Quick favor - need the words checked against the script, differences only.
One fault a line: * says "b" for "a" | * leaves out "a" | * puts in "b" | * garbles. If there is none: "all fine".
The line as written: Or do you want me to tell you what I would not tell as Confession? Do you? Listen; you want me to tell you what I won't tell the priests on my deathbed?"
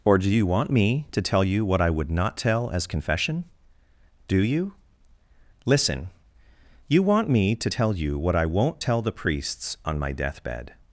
all fine